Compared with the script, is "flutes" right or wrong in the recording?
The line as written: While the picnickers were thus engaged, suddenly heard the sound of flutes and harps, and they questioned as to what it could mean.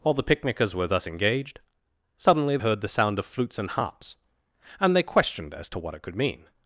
right